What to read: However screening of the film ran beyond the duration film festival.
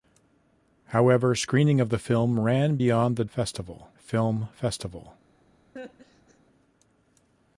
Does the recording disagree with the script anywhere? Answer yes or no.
yes